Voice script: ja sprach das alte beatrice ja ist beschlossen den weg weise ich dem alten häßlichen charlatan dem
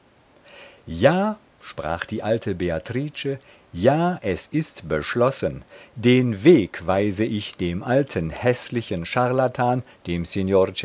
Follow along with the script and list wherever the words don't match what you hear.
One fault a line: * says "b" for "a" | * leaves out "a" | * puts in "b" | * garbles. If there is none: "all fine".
* says "die" for "das"
* puts in "es"